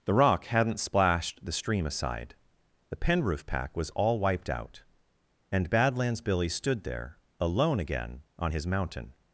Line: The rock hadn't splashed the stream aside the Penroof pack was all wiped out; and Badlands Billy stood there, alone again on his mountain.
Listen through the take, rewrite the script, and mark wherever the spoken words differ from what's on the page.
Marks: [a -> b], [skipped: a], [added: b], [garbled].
The rock hadn't splashed the stream aside the Penroof pack was all wiped out; and Badlands Billy stood there, alone again on his mountain.